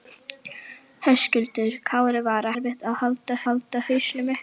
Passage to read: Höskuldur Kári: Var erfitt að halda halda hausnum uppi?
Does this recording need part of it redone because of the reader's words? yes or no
no